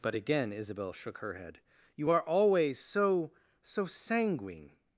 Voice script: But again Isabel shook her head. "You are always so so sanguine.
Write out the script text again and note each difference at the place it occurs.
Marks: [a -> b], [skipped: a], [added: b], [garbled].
But again Isabel shook her head. "You are always so so sanguine.